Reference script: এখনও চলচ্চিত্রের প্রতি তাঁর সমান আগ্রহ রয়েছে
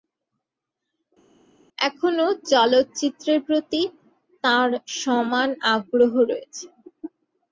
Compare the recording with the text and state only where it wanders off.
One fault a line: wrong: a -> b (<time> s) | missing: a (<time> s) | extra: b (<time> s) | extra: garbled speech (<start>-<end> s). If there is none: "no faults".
no faults